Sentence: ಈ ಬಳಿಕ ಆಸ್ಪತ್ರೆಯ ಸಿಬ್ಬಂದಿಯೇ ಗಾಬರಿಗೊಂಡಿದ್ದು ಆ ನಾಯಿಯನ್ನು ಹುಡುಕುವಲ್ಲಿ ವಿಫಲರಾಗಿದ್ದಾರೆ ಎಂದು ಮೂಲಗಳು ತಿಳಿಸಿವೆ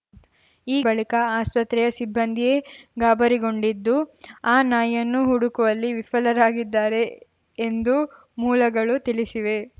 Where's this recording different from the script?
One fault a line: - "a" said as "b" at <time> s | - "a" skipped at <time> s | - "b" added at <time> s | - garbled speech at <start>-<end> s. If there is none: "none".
none